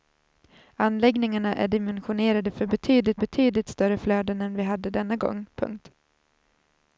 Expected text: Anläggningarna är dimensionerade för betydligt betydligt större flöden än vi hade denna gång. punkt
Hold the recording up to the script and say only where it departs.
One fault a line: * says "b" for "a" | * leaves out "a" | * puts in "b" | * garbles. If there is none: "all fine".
all fine